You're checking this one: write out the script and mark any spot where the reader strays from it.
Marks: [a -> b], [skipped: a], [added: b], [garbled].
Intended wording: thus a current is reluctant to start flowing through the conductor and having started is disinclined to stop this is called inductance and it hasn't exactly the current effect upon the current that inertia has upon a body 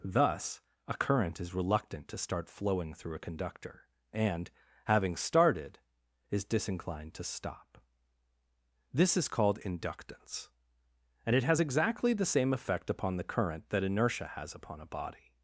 thus a current is reluctant to start flowing through [the -> a] conductor and having started is disinclined to stop this is called inductance and it [hasn't -> has] exactly the [current -> same] effect upon the current that inertia has upon a body